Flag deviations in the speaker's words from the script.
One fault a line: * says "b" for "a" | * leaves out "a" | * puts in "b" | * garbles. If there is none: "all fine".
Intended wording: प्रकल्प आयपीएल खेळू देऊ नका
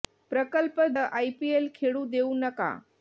all fine